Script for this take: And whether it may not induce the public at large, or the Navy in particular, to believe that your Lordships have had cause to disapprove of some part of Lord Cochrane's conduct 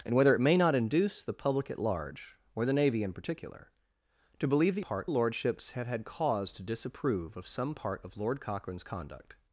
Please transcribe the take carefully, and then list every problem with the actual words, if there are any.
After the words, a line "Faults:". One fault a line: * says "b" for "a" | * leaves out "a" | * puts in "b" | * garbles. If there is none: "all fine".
And whether it may not induce the public at large, or the Navy in particular, to believe that part Lordships have had cause to disapprove of some part of Lord Cochrane's conduct
Faults:
* says "part" for "your"